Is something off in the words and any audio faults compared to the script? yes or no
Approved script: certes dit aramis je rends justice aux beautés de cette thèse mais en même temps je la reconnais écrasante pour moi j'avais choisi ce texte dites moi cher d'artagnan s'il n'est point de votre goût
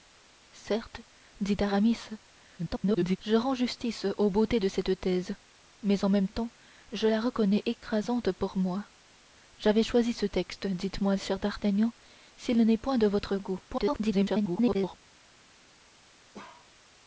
yes